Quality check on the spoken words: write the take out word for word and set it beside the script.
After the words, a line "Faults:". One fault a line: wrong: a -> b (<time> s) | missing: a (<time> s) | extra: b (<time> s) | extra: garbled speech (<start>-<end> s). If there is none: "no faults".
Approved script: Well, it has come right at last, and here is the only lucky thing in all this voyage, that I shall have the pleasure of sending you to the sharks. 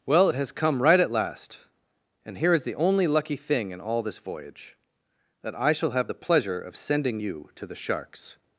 Well, it has come right at last, and here is the only lucky thing in all this voyage, that I shall have the pleasure of sending you to the sharks.
Faults:
no faults